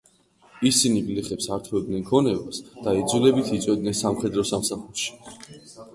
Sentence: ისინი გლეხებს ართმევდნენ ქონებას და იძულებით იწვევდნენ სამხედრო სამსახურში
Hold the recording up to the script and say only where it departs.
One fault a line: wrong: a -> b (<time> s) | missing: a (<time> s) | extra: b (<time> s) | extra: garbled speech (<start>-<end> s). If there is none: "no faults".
no faults